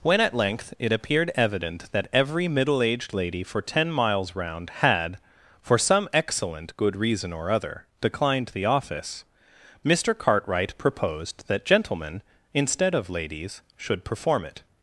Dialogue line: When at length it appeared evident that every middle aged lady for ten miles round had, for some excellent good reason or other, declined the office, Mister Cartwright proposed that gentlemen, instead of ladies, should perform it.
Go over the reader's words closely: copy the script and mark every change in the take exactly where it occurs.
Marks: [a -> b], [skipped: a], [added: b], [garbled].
When at length it appeared evident that every middle aged lady for ten miles round had, for some excellent good reason or other, declined the office, Mister Cartwright proposed that gentlemen, instead of ladies, should perform it.